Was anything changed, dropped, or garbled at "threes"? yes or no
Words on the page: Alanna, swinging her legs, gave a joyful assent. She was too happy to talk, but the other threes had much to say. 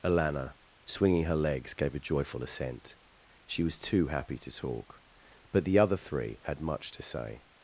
yes